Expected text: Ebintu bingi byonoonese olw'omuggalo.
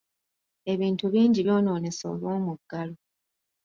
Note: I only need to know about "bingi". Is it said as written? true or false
true